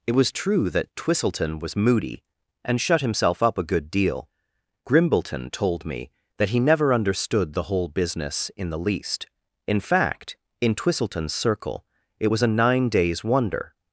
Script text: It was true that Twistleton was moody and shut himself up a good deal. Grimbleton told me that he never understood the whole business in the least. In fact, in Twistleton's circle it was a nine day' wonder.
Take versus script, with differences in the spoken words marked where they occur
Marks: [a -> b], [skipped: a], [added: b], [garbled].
It was true that Twistleton was moody and shut himself up a good deal. Grimbleton told me that he never understood the whole business in the least. In fact, in Twistleton's circle it was a nine [day' -> days] wonder.